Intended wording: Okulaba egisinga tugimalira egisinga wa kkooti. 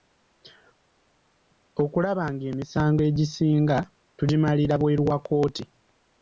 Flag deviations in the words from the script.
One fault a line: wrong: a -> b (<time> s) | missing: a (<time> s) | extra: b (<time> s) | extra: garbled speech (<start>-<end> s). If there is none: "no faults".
extra: ng'emisango (2.3 s)
wrong: egisinga -> bweru (4.8 s)